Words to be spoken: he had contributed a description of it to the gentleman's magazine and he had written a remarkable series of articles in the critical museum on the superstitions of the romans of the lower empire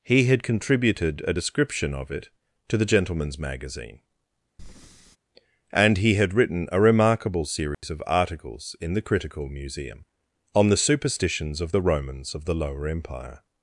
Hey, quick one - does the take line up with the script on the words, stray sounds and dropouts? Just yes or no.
no